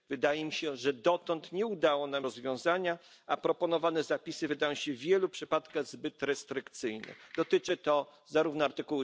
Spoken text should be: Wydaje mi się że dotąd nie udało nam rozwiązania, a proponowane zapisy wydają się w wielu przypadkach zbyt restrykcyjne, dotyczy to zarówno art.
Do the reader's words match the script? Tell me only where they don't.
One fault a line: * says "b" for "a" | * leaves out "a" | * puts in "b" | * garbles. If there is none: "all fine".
all fine